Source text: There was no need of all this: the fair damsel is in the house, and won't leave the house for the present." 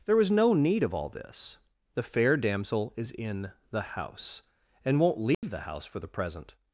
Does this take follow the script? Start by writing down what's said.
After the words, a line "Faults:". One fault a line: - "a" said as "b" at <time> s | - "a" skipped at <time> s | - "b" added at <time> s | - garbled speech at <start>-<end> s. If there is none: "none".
There was no need of all this: the fair damsel is in the house, and won't leave the house for the present."
Faults:
none